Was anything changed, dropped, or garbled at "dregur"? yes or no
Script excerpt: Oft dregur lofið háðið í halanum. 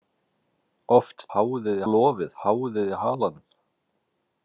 yes